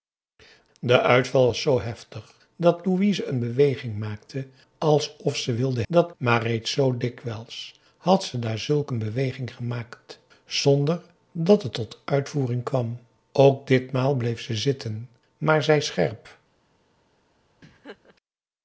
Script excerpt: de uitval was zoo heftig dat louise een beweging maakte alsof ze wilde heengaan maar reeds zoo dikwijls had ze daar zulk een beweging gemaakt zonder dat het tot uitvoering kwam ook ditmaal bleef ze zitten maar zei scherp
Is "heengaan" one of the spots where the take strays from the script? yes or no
yes